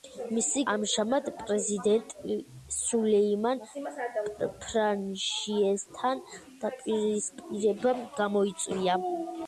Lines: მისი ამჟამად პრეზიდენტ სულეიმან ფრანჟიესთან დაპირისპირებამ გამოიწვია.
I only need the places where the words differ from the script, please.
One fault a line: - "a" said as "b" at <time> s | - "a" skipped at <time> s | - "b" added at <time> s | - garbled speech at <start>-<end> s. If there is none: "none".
none